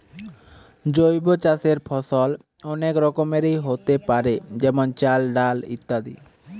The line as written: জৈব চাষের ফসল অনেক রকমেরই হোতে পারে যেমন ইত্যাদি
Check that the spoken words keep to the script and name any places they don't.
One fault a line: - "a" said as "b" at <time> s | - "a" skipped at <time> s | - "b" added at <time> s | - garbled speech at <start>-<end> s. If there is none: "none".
- "চাল ডাল" added at 4.9 s